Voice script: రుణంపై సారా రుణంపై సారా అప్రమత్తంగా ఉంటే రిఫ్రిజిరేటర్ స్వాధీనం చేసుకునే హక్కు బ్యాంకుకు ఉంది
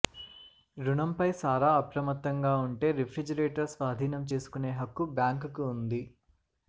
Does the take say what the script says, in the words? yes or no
no